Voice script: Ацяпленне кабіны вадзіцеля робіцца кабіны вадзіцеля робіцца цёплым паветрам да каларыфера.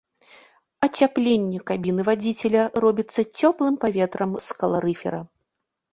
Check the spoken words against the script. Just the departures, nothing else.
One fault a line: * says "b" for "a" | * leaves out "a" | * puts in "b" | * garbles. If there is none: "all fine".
* leaves out "кабіны вадзіцеля робіцца"
* says "з" for "да"